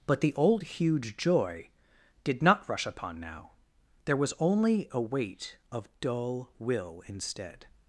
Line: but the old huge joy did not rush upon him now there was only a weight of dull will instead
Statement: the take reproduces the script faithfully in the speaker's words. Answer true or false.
false